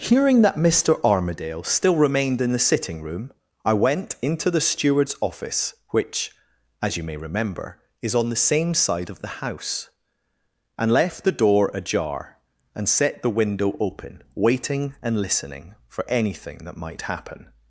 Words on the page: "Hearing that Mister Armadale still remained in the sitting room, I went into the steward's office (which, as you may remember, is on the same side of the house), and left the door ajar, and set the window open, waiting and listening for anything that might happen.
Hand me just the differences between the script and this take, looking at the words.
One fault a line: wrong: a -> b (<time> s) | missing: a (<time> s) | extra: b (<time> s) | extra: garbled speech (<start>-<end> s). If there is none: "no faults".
no faults